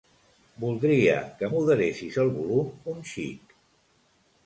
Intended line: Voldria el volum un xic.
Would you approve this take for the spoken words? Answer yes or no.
no